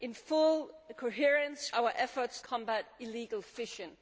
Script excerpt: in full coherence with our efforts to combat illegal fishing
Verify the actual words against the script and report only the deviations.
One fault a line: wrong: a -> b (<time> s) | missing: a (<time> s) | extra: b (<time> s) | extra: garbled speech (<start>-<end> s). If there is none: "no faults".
missing: with (1.8 s)
missing: to (2.4 s)